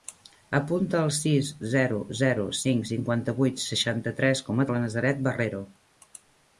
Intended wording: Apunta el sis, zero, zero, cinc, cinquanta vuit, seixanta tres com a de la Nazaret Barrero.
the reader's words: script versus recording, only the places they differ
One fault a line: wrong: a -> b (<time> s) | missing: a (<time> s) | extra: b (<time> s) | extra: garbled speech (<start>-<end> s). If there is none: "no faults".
no faults